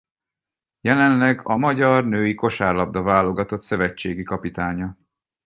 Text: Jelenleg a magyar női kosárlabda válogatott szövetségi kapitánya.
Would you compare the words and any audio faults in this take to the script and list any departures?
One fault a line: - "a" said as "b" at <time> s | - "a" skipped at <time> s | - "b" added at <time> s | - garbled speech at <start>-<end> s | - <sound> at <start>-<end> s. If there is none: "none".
none